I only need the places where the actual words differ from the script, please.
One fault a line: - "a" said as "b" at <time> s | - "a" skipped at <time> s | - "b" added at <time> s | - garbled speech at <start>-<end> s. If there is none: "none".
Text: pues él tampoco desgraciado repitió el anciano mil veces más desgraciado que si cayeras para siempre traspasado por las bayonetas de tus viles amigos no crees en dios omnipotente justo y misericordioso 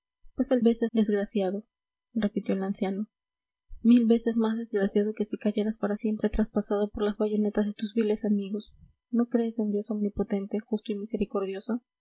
- "tampoco" said as "veces" at 0.6 s